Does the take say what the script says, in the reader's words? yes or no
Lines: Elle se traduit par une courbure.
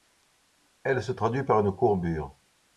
yes